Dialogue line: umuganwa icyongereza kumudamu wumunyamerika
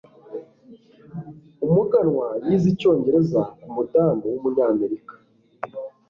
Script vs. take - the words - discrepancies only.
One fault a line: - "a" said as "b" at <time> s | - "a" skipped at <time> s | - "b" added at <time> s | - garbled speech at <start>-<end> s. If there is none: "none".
- "yize" added at 2.5 s